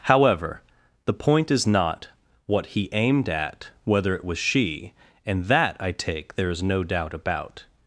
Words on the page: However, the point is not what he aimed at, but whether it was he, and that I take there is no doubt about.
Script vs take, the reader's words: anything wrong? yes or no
yes